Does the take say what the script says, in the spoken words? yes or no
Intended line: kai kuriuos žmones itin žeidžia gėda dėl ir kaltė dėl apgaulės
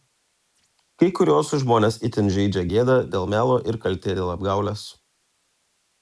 no